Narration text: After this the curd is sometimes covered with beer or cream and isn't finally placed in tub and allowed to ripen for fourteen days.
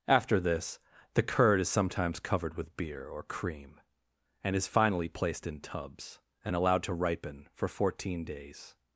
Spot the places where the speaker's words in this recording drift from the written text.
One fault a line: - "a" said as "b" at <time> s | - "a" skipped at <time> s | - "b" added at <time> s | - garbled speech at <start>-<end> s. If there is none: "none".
- "isn't" said as "is" at 4.5 s
- "tub" said as "tubs" at 5.6 s